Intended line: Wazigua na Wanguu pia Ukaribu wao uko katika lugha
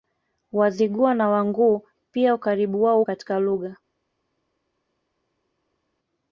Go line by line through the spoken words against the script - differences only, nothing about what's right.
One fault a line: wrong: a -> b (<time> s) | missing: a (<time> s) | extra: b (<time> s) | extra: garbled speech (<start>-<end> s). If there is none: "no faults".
missing: uko (3.0 s)